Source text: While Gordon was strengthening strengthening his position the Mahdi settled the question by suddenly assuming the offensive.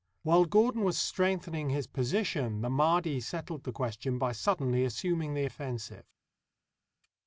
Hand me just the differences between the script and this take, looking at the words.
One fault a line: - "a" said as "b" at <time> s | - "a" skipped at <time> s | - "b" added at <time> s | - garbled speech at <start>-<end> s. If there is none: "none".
- "strengthening" skipped at 1.7 s